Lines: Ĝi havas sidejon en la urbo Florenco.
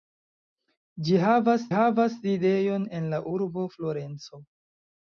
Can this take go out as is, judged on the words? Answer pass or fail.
fail